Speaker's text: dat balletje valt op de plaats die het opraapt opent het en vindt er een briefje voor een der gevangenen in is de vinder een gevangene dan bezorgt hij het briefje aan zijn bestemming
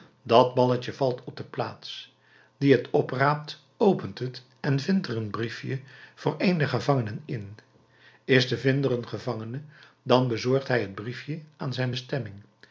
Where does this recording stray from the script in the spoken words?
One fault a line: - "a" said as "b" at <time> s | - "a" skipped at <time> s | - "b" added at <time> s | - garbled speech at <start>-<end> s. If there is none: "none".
none